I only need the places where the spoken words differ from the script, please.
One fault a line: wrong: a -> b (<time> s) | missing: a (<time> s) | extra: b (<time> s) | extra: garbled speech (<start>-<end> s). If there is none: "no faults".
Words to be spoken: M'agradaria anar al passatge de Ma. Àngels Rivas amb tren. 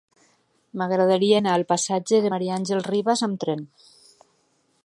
no faults